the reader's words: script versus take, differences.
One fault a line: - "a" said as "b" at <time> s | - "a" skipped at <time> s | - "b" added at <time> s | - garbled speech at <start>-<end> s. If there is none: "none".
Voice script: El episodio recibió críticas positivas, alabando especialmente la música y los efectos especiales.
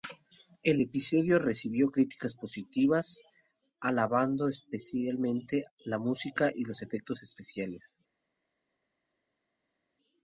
none